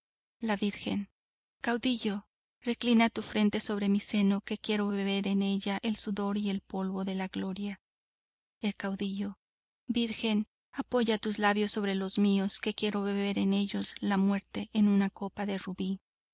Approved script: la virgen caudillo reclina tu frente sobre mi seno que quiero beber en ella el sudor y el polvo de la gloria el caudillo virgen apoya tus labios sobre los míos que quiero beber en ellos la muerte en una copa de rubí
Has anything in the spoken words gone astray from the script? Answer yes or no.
no